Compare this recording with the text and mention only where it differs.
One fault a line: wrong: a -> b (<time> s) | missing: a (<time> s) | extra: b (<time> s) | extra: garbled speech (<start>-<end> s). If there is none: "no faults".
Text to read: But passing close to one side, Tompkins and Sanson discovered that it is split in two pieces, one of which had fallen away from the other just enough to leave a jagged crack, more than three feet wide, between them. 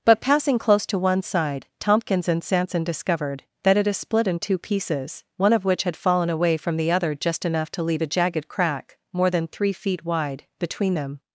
no faults